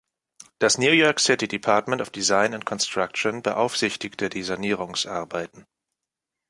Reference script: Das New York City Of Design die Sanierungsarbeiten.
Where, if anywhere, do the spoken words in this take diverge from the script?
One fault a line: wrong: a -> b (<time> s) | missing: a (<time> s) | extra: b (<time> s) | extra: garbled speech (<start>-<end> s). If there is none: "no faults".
extra: Department (1.5 s)
extra: and Construction beaufsichtigte (2.5 s)